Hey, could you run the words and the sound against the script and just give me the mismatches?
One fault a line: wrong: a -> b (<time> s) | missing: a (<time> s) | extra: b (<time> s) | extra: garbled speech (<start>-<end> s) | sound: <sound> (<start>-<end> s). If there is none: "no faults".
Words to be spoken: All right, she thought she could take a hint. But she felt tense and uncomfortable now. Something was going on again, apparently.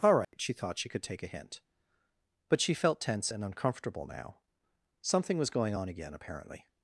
sound: dropout (0.2-0.3 s)